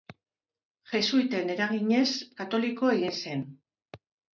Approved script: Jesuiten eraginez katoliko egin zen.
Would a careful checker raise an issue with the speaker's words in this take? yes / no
no